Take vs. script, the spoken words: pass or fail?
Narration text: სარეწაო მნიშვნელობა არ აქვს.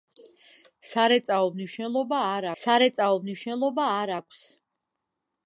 fail